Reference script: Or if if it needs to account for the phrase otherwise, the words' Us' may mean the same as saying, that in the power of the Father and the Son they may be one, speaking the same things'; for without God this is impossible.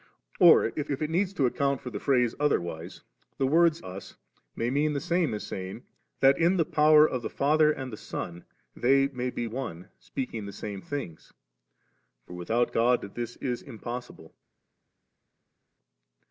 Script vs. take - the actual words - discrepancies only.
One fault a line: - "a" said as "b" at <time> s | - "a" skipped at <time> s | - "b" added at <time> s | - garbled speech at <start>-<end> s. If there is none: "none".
none